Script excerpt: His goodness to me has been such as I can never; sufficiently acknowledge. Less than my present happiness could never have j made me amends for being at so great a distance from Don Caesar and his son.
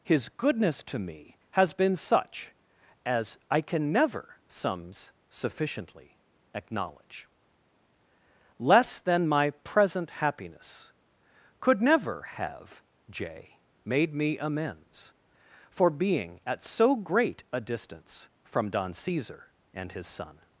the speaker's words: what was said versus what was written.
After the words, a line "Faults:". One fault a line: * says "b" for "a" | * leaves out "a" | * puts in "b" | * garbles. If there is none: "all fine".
His goodness to me has been such as I can never; sums sufficiently acknowledge. Less than my present happiness could never have j made me amends for being at so great a distance from Don Caesar and his son.
Faults:
* puts in "sums"